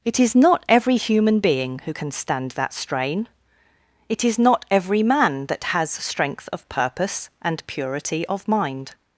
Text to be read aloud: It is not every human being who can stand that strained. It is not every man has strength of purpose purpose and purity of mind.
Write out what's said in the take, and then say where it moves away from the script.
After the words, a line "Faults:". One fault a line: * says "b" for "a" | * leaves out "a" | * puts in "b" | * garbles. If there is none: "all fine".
It is not every human being who can stand that strain. It is not every man that has strength of purpose and purity of mind.
Faults:
* says "strain" for "strained"
* puts in "that"
* leaves out "purpose"